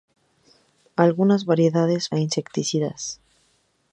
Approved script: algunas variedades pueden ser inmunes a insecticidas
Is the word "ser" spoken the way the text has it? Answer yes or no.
no